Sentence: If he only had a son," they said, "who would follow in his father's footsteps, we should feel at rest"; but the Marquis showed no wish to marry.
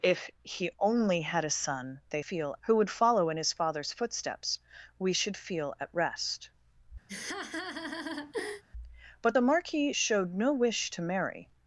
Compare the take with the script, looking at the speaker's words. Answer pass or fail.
fail